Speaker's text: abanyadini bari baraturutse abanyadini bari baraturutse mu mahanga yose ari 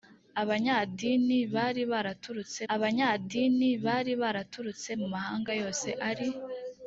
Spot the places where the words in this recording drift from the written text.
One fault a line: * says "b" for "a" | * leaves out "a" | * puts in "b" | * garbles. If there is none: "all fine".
all fine